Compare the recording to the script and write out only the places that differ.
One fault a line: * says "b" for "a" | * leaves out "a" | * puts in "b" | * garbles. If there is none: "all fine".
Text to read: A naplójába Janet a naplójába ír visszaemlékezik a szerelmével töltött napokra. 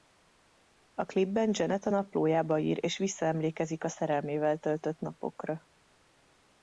* says "klipben" for "naplójába"
* puts in "és"